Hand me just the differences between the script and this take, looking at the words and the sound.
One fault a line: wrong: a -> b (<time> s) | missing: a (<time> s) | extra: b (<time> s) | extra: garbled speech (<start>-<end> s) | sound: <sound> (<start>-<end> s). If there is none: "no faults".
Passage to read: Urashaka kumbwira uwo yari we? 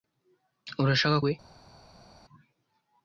missing: kumbwira uwo yari (1.2 s)